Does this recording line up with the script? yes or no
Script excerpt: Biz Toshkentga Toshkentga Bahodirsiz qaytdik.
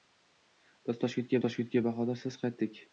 yes